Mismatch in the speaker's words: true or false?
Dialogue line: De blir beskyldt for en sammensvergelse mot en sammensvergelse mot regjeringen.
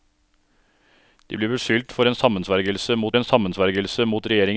false